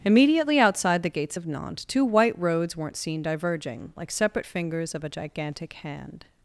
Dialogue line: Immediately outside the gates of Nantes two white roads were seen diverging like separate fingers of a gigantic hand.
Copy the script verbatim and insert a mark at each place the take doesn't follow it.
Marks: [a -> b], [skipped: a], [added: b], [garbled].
Immediately outside the gates of Nantes two white roads [were -> weren't] seen diverging like separate fingers of a gigantic hand.